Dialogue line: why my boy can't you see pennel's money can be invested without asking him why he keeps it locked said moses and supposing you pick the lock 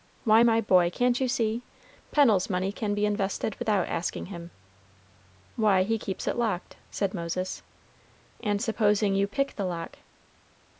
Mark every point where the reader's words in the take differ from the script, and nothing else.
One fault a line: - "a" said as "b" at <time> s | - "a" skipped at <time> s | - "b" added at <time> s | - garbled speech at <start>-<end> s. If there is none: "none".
none